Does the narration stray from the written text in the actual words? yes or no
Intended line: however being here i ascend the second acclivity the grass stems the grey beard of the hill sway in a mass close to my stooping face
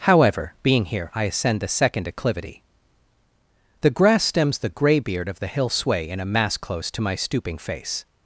no